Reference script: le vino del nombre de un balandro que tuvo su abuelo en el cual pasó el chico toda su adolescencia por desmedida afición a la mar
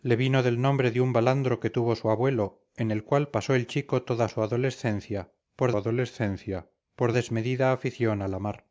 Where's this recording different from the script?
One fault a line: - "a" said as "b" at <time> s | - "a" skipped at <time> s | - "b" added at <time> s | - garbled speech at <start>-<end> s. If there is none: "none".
- "adolescencia por" added at 5.7 s